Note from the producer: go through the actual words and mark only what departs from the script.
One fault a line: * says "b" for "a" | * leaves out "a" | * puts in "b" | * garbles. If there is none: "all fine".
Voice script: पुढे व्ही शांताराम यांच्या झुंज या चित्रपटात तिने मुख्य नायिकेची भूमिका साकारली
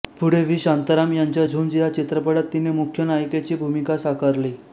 all fine